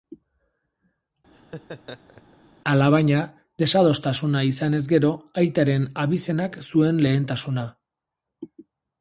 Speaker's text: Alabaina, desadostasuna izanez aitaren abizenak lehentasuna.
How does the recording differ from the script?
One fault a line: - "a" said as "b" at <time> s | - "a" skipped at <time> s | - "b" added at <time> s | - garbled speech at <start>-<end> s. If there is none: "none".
- "gero" added at 4.9 s
- "zuen" added at 6.7 s